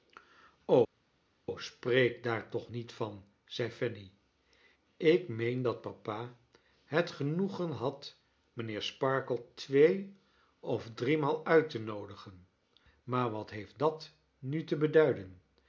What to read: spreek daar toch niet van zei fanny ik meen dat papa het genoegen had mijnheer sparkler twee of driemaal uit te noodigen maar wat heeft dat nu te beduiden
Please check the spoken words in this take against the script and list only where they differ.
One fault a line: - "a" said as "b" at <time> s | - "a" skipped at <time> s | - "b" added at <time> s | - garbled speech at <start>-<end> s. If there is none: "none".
none